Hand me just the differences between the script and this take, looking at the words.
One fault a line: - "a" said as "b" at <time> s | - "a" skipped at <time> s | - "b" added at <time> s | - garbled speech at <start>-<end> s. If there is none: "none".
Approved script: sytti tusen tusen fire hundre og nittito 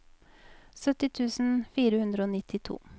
- "tusen" skipped at 1.5 s